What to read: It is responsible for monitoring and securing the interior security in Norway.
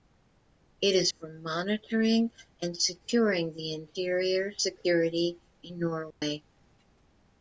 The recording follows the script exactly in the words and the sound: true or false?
false